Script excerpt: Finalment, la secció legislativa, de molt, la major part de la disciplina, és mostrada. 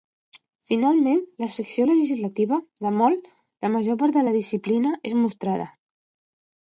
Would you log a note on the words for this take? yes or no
no